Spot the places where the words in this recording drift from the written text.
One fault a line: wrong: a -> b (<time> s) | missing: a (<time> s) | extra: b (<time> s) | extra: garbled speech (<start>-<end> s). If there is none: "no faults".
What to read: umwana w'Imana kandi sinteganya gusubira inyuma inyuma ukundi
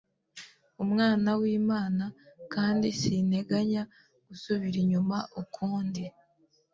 missing: inyuma (5.2 s)